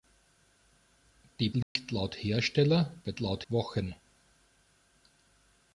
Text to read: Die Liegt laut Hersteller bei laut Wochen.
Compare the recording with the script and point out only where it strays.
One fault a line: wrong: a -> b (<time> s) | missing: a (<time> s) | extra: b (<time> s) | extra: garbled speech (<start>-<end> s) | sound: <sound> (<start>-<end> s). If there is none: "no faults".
sound: dropout (1.6-1.8 s)